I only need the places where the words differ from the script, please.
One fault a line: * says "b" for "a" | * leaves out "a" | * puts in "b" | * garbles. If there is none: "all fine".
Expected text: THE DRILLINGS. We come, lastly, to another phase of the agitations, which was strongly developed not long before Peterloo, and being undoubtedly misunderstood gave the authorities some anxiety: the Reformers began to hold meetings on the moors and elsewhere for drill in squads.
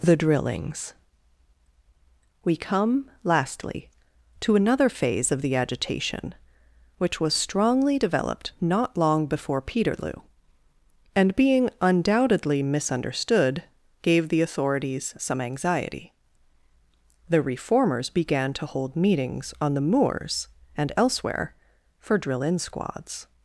* says "agitation" for "agitations"